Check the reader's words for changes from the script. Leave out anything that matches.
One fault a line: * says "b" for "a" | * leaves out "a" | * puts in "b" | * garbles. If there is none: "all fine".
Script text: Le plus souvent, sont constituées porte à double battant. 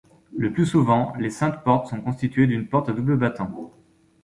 * puts in "les Saintes Portes"
* puts in "d'une"